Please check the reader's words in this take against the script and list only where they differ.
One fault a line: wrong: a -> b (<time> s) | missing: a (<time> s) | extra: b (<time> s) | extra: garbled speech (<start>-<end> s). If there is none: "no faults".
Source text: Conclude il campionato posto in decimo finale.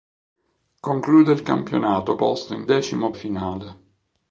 no faults